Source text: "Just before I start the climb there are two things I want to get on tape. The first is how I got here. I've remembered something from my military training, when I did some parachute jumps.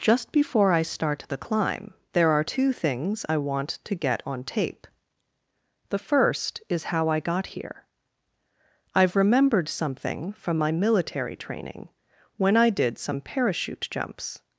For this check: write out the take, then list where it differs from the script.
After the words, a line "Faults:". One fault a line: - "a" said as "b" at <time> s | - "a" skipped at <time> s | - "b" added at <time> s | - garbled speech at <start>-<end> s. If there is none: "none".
"Just before I start the climb there are two things I want to get on tape. The first is how I got here. I've remembered something from my military training, when I did some parachute jumps.
Faults:
none